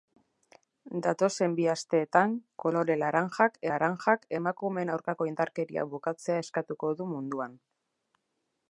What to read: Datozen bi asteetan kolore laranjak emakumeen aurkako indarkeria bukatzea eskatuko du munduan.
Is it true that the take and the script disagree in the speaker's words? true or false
true